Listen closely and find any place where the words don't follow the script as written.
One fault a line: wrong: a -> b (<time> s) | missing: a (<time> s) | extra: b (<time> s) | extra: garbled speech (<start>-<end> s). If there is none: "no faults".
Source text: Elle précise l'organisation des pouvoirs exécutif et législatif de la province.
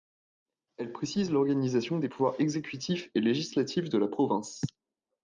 no faults